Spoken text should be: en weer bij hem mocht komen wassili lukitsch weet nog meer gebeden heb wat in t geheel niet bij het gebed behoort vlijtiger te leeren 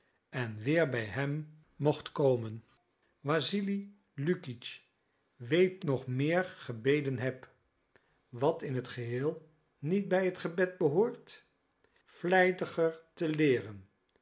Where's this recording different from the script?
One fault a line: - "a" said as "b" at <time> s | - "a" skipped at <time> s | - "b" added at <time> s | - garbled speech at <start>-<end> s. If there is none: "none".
none